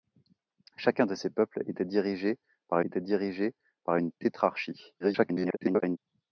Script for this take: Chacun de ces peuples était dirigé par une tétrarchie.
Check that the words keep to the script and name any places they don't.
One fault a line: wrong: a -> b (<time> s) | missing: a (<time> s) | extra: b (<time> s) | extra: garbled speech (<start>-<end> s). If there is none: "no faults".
extra: était dirigé par (2.8 s)
extra: garbled speech (5.0-6.0 s)